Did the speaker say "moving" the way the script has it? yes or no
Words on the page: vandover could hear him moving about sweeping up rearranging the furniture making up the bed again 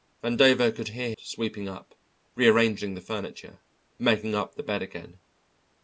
no